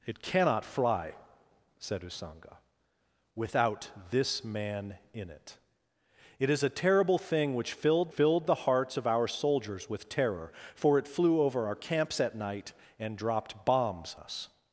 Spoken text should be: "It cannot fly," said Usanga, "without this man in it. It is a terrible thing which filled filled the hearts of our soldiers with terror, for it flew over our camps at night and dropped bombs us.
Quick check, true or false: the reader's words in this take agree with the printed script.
true